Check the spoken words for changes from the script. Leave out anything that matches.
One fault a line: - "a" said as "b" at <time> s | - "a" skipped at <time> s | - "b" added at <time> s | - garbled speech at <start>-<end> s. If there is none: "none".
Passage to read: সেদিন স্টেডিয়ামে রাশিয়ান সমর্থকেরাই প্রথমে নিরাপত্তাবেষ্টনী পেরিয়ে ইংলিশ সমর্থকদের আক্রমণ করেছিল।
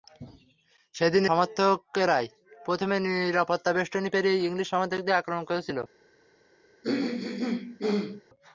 - "স্টেডিয়ামে রাশিয়ান" skipped at 1.2 s